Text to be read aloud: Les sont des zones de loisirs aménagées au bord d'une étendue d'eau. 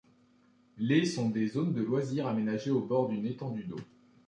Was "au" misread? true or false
false